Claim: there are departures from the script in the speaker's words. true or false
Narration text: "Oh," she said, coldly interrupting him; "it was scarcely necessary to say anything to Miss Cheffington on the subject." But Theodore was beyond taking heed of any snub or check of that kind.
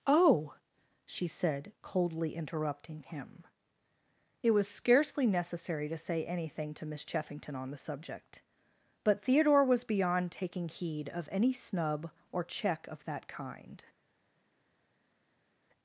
false